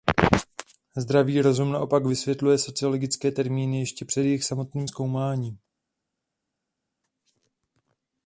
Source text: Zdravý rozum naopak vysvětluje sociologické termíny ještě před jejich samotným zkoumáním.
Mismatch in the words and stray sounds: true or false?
false